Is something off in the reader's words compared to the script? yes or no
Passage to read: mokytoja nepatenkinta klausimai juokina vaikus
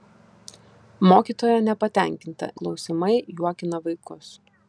no